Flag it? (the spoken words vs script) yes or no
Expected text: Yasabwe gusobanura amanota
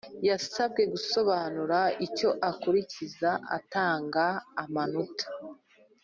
yes